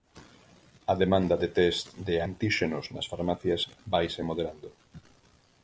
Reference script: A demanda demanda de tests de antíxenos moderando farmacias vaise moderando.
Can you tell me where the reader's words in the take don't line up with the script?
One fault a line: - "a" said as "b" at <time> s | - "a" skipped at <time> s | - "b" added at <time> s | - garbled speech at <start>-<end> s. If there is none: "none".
- "demanda" skipped at 1.4 s
- "moderando" said as "nas" at 2.9 s